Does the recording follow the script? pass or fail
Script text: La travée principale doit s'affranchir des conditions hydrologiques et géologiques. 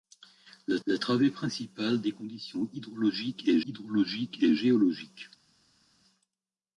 fail